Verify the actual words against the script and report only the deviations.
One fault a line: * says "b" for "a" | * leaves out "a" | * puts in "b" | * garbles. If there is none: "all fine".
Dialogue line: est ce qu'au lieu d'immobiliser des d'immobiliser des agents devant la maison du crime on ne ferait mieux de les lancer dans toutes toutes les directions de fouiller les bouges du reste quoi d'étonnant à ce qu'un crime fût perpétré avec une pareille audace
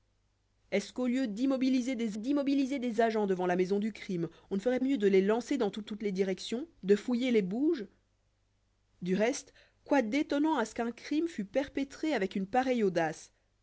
all fine